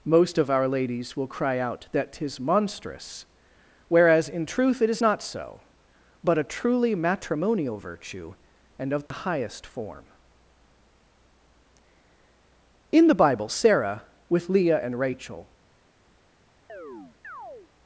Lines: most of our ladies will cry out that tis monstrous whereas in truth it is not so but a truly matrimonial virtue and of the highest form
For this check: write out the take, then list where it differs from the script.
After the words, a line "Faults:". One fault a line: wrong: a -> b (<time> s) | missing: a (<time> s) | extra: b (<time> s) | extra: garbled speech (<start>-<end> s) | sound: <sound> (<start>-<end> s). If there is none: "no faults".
most of our ladies will cry out that tis monstrous whereas in truth it is not so but a truly matrimonial virtue and of the highest form in the bible sarah with leah and rachel
Faults:
sound: dropout (9.1-9.1 s)
extra: in the bible sarah with leah and rachel (12.9 s)
sound: chirp (16.7-17.7 s)